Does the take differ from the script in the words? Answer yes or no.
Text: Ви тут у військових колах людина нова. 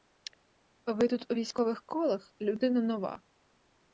no